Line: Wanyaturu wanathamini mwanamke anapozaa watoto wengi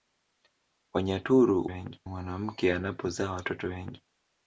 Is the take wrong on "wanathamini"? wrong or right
wrong